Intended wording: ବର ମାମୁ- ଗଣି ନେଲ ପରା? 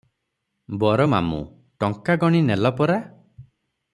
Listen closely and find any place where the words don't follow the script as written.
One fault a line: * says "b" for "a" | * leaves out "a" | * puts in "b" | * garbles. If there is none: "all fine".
* puts in "ଟଙ୍କା"